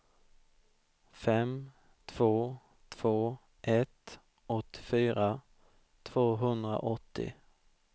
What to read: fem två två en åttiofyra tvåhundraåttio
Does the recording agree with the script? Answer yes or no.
no